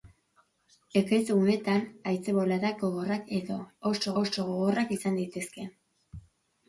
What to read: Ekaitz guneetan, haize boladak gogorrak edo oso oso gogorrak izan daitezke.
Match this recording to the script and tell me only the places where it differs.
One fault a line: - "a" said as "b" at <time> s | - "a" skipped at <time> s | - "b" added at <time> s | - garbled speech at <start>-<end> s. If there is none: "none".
none